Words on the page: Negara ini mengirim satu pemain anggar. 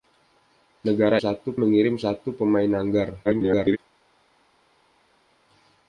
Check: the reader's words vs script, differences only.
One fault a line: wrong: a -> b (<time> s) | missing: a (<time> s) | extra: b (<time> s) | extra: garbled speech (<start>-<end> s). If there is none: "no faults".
wrong: ini -> satu (1.2 s)
extra: garbled speech (3.2-3.8 s)